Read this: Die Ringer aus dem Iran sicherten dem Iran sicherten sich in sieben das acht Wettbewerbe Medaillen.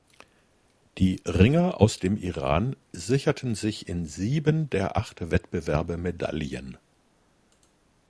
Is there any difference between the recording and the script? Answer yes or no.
yes